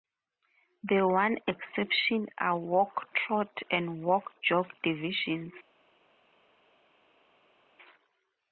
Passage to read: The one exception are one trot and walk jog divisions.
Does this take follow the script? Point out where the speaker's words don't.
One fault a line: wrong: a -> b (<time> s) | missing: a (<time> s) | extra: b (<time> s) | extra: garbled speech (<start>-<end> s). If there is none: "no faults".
wrong: one -> walk (2.6 s)